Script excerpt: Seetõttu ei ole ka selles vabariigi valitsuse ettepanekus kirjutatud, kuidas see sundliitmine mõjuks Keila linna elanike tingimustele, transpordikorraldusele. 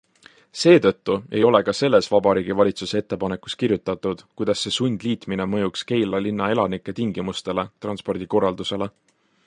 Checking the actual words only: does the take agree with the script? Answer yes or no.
yes